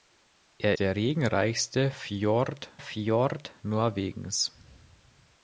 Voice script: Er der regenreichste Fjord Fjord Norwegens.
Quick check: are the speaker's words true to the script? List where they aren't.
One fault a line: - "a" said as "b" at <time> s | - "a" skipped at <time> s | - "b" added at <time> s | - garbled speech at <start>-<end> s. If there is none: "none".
none